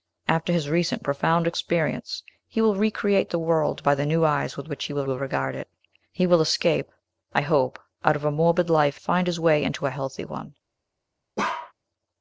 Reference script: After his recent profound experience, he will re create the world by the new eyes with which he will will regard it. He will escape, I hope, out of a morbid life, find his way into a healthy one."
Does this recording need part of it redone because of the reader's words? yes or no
no